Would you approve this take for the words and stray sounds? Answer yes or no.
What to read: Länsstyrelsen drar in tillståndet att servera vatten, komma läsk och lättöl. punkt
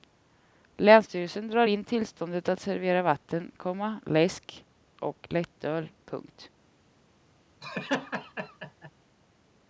no